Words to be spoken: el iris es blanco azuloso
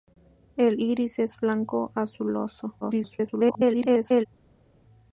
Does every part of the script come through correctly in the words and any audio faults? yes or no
no